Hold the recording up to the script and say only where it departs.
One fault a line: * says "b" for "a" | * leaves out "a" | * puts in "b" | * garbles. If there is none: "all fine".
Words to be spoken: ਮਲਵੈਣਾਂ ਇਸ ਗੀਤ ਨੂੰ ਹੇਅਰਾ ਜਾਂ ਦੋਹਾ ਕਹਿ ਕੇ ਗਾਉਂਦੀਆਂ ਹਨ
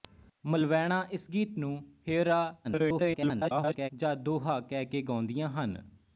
* garbles